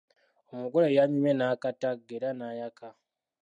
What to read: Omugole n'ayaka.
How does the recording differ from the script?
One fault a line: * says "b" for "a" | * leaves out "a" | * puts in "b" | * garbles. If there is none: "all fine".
* puts in "yanyumye n'akatagga era"